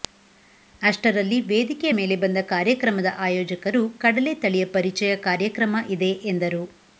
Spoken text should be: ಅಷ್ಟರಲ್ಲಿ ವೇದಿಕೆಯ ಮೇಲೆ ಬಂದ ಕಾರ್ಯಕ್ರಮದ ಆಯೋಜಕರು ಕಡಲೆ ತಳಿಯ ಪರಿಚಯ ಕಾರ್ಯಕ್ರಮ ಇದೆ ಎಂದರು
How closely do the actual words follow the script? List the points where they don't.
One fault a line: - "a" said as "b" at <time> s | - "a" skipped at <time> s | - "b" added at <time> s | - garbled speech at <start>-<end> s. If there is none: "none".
none